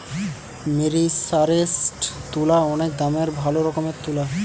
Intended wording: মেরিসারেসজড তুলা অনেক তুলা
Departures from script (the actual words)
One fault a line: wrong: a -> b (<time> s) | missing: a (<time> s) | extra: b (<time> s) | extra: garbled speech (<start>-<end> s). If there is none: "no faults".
extra: দামের ভালো রকমের (3.0 s)